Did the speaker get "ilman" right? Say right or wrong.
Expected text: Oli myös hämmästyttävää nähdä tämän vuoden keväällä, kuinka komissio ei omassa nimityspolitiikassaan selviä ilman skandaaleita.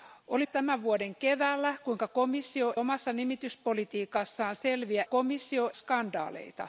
wrong